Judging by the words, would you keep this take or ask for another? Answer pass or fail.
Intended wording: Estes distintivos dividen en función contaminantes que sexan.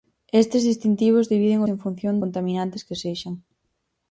pass